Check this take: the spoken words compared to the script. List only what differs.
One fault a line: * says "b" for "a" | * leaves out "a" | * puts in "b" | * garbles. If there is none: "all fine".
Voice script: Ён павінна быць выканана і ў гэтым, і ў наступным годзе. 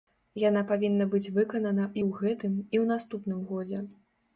* says "Яна" for "Ён"